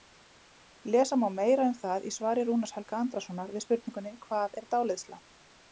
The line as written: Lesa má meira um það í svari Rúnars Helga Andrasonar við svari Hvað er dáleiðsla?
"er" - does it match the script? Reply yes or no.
yes